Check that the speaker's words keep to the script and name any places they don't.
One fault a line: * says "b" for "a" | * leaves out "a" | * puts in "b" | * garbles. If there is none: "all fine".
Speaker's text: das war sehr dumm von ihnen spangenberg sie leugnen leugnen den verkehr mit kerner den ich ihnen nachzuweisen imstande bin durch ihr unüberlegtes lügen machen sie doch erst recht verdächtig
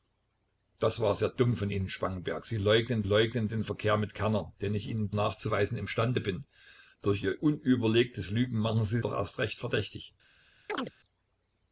all fine